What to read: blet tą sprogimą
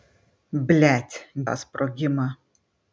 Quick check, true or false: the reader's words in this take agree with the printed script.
true